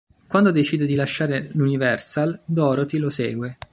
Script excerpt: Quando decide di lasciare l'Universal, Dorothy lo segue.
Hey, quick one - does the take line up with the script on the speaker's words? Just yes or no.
yes